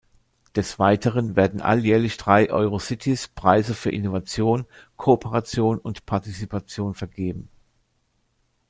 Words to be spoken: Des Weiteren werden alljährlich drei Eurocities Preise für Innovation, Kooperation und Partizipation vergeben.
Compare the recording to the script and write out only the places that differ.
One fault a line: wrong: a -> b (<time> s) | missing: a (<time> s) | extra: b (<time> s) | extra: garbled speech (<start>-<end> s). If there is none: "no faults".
no faults